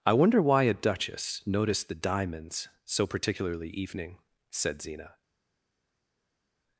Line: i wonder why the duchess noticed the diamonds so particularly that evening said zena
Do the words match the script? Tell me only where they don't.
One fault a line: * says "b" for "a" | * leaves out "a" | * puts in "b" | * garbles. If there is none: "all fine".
* says "a" for "the"
* leaves out "that"